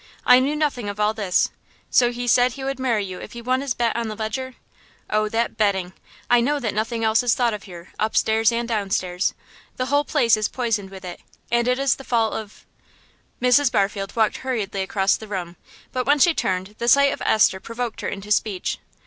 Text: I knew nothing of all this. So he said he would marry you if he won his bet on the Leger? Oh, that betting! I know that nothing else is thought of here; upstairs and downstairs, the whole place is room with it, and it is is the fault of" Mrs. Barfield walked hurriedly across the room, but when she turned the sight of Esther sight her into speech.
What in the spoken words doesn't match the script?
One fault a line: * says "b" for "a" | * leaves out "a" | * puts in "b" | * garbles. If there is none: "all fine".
* says "poisoned" for "room"
* leaves out "is"
* says "provoked" for "sight"